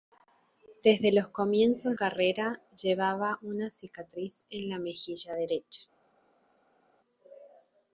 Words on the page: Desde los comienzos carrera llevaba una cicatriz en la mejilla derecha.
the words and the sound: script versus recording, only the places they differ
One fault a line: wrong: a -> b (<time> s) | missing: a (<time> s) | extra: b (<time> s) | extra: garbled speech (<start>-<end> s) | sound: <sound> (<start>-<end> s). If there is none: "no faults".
no faults